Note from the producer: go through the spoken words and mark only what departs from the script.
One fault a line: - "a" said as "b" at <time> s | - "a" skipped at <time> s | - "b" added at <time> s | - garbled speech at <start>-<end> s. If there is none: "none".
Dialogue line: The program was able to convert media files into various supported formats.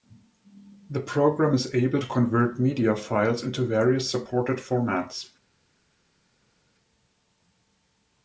- "was" said as "is" at 1.5 s